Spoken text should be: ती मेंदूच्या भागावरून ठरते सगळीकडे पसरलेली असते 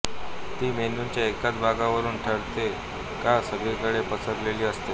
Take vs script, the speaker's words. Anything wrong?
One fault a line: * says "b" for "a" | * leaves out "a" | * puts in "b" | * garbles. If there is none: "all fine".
* puts in "एकाच"
* puts in "का"